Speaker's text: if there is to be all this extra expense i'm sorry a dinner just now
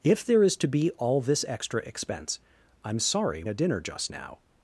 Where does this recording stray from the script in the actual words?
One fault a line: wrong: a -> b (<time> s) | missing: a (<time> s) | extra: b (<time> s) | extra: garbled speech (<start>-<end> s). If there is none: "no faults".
no faults